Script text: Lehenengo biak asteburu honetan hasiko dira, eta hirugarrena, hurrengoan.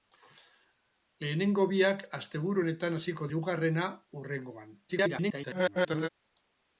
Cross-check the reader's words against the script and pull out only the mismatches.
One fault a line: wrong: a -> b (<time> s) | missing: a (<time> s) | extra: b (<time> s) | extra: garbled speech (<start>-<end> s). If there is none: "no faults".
missing: dira eta (3.3 s)
extra: garbled speech (4.9-6.1 s)